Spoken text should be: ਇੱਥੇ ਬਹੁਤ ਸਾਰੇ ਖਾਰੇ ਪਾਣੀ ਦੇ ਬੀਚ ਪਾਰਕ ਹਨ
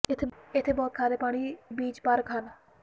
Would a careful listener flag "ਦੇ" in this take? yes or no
yes